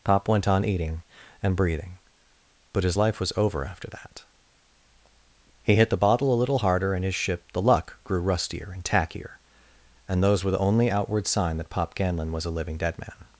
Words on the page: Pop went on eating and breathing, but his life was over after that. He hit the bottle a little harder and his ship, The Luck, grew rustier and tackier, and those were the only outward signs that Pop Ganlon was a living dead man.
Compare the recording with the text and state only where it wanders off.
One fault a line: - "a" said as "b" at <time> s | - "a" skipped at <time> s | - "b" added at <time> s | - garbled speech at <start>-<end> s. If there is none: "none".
- "signs" said as "sign" at 11.3 s